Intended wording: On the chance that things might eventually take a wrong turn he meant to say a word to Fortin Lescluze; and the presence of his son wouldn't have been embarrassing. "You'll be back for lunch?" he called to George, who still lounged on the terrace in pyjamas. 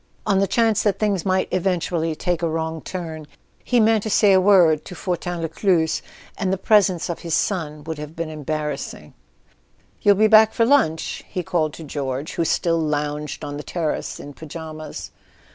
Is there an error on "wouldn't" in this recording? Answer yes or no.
yes